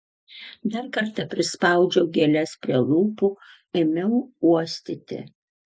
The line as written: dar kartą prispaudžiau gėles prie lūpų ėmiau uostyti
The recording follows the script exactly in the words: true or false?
true